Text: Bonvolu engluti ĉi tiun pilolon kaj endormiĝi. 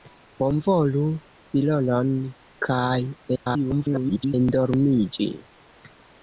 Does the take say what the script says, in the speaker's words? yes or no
no